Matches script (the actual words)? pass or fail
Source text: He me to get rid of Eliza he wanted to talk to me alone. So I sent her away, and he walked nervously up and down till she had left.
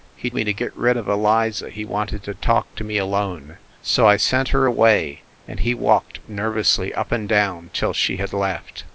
pass